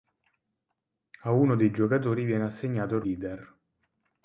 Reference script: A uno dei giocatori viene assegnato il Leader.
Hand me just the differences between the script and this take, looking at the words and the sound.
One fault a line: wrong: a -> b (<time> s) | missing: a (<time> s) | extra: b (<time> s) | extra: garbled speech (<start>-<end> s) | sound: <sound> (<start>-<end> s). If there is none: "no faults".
no faults